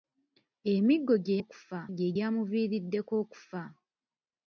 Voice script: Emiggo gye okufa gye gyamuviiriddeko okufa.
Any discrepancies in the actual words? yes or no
no